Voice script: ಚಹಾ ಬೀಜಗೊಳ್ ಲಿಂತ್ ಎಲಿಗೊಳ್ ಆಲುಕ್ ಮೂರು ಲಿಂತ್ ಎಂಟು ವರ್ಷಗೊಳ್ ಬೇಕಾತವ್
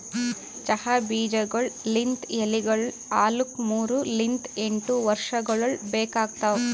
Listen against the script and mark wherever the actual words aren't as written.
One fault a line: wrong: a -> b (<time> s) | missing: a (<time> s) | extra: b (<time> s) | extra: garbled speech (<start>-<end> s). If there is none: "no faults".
no faults